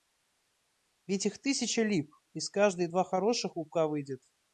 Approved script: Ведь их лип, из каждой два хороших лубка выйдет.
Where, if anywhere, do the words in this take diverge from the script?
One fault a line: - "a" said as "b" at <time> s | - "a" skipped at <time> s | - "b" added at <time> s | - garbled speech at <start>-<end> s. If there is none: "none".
- "тысяча" added at 1.4 s